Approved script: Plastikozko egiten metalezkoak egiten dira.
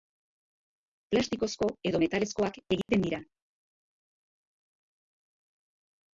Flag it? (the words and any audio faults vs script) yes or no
yes